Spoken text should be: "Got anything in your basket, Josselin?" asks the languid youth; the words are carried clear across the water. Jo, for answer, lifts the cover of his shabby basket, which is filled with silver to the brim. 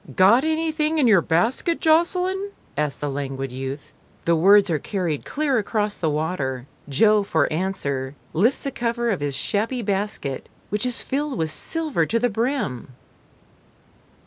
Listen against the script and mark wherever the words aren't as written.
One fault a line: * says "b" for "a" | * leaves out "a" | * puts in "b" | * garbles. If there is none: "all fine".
all fine